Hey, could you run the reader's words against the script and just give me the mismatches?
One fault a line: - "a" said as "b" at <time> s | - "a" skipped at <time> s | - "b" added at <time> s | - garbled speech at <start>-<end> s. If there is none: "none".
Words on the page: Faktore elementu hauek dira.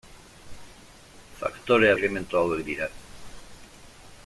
none